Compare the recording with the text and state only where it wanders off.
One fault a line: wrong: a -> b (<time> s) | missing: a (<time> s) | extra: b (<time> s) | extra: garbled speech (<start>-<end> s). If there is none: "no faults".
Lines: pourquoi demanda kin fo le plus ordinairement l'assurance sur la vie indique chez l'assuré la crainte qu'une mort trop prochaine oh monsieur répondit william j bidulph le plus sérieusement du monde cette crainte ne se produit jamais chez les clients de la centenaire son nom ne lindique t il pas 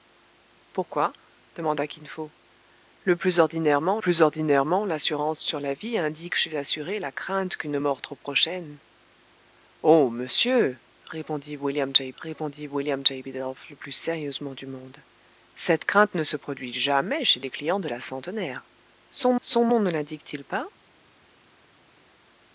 extra: plus ordinairement (4.0 s)
extra: répondit william j (12.2 s)
extra: son (19.4 s)